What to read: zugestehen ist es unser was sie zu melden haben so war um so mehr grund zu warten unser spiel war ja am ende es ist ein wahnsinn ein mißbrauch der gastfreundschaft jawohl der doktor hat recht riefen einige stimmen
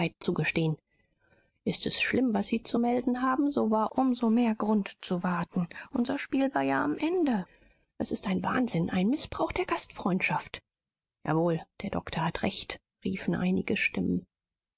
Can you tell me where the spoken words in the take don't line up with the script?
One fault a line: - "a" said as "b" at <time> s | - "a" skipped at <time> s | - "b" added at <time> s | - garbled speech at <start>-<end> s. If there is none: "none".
- "unser" said as "schlimm" at 2.0 s